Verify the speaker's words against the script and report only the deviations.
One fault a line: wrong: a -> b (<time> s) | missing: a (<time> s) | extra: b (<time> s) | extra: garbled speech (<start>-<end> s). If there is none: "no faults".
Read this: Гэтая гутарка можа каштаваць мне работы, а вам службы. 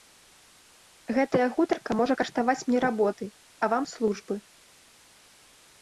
no faults